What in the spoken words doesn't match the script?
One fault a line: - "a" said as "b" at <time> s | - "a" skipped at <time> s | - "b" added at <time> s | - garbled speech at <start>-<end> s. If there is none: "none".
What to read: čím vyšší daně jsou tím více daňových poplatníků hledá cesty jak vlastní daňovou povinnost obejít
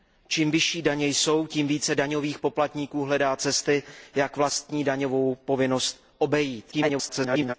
- garbled speech at 6.7-7.5 s